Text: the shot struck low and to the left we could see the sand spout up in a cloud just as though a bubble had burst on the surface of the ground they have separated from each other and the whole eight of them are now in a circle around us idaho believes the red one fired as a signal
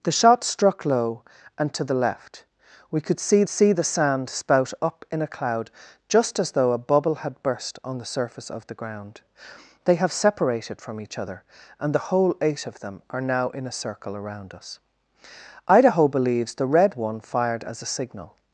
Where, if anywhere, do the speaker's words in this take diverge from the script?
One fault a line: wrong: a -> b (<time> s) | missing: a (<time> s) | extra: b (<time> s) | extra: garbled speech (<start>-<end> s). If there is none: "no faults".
extra: see (3.5 s)